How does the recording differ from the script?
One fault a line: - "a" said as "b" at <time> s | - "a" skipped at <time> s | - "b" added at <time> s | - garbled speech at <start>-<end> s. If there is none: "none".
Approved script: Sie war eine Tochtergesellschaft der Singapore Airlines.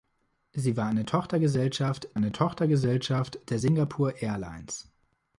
- "eine Tochtergesellschaft" added at 2.1 s